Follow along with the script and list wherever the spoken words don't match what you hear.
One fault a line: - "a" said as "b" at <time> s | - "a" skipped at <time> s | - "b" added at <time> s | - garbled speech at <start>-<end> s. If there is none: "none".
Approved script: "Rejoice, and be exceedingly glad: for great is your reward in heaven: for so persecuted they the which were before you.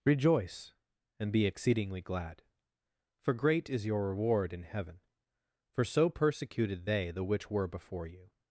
none